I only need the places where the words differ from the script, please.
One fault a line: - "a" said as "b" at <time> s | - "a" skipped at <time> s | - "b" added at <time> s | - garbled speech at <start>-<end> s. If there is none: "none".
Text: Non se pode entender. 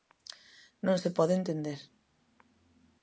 none